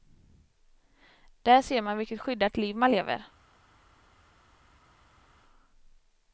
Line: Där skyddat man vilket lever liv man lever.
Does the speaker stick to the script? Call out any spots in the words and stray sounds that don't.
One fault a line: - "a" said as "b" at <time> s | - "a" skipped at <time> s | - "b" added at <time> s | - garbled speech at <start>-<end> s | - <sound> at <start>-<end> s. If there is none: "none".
- "skyddat" said as "ser" at 1.6 s
- "lever" said as "skyddat" at 2.2 s